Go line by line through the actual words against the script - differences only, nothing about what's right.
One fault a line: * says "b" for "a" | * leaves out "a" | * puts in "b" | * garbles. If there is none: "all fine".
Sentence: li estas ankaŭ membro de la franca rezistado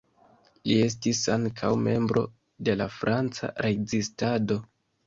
* says "estis" for "estas"